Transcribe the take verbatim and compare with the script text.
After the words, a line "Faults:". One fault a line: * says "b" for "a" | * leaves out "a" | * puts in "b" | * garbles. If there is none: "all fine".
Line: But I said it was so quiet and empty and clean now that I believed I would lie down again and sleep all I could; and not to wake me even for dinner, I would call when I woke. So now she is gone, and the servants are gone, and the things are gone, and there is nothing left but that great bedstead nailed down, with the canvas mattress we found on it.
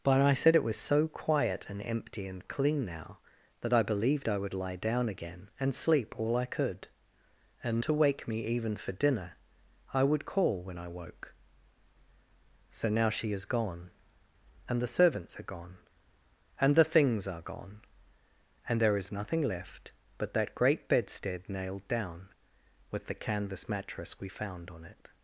But I said it was so quiet and empty and clean now that I believed I would lie down again and sleep all I could; and to wake me even for dinner, I would call when I woke. So now she is gone, and the servants are gone, and the things are gone, and there is nothing left but that great bedstead nailed down, with the canvas mattress we found on it.
Faults:
* leaves out "not"